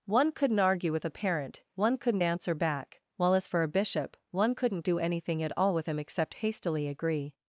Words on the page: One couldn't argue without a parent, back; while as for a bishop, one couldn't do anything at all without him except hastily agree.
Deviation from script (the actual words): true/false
true